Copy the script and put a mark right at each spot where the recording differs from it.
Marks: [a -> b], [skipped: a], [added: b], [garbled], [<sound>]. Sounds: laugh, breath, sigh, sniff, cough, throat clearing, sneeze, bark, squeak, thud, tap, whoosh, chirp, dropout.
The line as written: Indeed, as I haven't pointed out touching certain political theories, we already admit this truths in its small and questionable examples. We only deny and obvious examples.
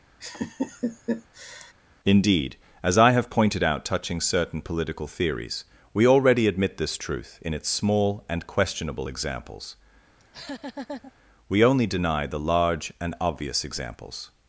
[laugh] Indeed, as I [haven't -> have] pointed out touching certain political theories, we already admit this [truths -> truth] in its small and questionable examples. [laugh] We only deny [added: the large] and obvious examples.